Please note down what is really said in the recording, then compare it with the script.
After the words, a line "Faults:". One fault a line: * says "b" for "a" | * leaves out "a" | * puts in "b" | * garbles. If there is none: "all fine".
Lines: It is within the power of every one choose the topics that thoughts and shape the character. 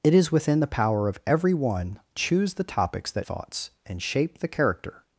It is within the power of every one choose the topics that thoughts and shape the character.
Faults:
all fine